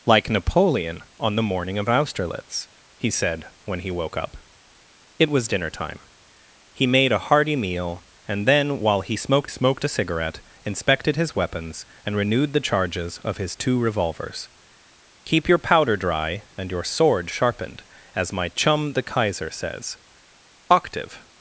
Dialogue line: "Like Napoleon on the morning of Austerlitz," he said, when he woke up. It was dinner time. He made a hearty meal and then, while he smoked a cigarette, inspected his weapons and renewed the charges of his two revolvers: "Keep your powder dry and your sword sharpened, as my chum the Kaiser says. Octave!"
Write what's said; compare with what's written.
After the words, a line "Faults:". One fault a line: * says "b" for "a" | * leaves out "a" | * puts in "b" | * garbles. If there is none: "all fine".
"Like Napoleon on the morning of Austerlitz," he said, when he woke up. It was dinner time. He made a hearty meal and then, while he smoked smoked a cigarette, inspected his weapons and renewed the charges of his two revolvers: "Keep your powder dry and your sword sharpened, as my chum the Kaiser says. Octave!"
Faults:
* puts in "smoked"